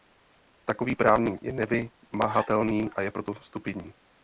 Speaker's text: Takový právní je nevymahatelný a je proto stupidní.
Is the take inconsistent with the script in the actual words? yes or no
no